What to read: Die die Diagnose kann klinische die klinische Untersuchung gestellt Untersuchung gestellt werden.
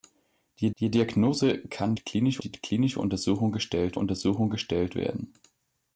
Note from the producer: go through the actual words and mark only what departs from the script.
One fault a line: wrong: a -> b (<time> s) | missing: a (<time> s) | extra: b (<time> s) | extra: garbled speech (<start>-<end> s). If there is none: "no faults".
no faults